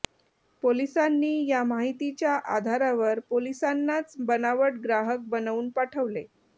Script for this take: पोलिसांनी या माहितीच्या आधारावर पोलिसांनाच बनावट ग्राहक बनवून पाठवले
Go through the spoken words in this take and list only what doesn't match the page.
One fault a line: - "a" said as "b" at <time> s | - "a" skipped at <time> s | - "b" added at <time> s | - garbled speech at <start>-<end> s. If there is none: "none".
none